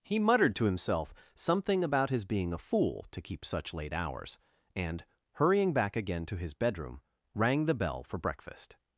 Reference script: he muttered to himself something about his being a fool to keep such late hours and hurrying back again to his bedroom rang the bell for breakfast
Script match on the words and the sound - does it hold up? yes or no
yes